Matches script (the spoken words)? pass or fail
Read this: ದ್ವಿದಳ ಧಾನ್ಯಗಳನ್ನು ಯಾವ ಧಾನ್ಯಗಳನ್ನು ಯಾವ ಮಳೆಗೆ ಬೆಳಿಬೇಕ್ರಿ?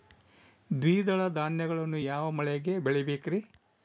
fail